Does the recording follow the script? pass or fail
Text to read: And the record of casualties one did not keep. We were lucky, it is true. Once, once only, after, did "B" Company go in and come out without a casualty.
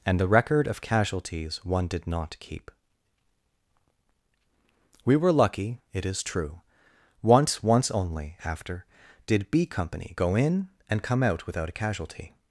pass